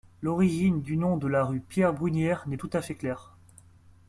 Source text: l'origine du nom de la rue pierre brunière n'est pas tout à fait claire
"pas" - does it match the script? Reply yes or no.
no